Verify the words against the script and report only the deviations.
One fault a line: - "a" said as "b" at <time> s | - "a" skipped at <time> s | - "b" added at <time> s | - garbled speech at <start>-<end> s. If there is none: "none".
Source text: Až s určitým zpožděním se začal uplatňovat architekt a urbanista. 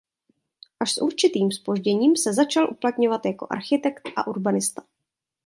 - "jako" added at 3.2 s